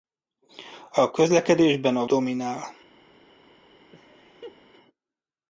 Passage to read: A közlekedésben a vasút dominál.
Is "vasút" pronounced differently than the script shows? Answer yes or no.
yes